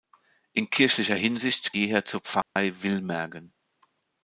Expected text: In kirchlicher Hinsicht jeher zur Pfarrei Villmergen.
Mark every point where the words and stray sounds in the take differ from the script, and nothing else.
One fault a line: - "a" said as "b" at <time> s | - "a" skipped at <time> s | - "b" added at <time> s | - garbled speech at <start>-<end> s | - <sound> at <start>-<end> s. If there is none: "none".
- dropout at 2.4-2.6 s